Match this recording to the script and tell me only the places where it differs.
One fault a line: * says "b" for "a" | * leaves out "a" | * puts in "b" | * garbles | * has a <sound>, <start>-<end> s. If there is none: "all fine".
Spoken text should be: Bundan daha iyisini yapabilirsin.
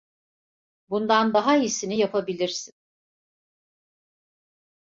all fine